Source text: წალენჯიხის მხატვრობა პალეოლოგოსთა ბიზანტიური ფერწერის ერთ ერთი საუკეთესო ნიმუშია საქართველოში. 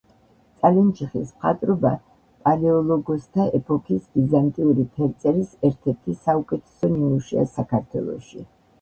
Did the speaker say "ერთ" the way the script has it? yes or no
yes